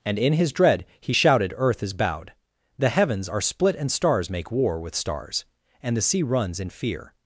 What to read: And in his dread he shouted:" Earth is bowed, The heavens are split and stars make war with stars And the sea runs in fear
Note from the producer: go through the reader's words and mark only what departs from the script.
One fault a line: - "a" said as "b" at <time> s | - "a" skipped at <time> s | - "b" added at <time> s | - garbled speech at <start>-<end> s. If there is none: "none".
none